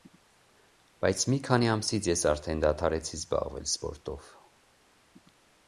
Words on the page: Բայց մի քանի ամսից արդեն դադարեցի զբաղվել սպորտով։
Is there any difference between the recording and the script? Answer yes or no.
yes